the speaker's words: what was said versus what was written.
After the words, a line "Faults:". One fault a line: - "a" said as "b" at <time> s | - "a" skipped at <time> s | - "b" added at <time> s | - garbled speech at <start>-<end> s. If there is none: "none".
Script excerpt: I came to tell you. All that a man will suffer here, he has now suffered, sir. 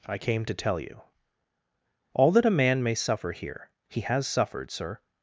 I came to tell you. All that a man may suffer here, he has suffered, sir.
Faults:
- "will" said as "may" at 2.8 s
- "now" skipped at 4.3 s